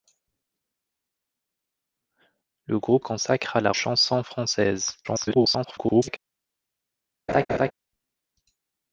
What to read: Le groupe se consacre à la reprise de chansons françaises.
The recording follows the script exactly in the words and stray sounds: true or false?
false